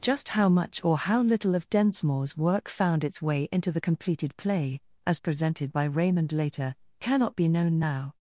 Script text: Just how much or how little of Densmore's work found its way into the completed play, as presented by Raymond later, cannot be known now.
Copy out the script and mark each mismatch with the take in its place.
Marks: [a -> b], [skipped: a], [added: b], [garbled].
Just how much or how little of Densmore's work found its way into the completed play, as presented by Raymond later, cannot be known now.